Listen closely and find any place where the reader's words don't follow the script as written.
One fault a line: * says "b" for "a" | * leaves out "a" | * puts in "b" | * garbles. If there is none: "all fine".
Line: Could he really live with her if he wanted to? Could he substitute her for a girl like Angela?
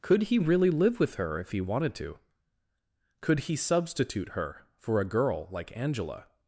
all fine